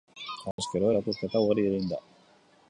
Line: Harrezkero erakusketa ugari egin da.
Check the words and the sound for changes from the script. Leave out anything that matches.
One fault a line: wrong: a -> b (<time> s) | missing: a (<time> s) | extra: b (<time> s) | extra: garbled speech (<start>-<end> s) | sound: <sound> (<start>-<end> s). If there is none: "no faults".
sound: dropout (0.5-0.6 s)